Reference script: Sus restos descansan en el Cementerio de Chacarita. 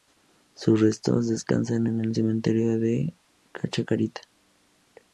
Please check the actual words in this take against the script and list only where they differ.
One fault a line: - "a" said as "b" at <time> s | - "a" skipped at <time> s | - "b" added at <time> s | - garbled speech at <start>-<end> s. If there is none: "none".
none